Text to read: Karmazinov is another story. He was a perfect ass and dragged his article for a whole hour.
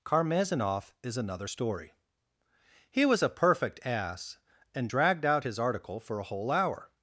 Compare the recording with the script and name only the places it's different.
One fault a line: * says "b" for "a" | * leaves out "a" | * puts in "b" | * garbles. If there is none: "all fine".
* puts in "out"